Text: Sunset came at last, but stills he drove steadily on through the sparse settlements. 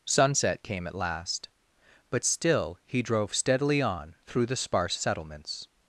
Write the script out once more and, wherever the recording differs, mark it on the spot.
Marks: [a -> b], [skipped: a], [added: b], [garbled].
Sunset came at last, but [stills -> still] he drove steadily on through the sparse settlements.